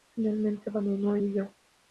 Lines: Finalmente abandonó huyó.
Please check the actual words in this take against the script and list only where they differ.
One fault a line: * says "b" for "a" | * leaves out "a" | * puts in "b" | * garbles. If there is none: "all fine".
all fine